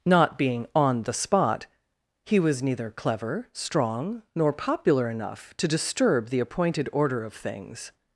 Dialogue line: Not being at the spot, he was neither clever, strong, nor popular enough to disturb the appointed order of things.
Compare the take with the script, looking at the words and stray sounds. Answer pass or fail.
fail